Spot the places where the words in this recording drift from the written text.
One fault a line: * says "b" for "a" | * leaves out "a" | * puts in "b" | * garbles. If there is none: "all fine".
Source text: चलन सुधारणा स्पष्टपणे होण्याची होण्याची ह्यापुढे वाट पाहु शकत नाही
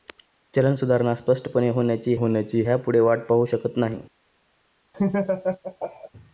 all fine